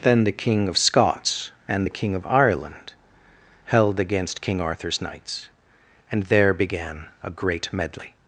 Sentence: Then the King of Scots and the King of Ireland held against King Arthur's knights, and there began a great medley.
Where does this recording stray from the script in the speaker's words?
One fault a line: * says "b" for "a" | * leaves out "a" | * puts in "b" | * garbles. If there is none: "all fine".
all fine